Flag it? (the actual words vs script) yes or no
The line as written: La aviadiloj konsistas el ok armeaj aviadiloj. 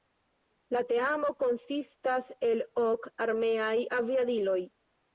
yes